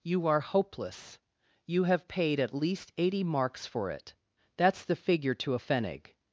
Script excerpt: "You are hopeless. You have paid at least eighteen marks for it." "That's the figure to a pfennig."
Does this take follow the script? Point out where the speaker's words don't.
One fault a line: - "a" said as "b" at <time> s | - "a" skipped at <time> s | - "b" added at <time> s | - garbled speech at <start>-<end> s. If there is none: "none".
- "eighteen" said as "eighty" at 3.0 s